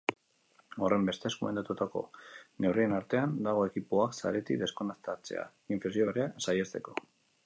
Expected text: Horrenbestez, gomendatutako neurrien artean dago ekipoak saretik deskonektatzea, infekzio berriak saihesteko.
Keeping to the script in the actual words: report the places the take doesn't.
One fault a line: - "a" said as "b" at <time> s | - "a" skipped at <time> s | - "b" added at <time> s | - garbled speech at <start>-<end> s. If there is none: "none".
none